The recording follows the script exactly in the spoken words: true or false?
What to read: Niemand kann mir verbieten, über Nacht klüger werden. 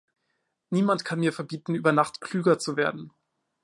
false